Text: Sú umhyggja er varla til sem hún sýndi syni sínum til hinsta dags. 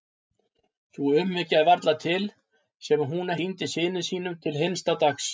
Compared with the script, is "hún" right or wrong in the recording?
right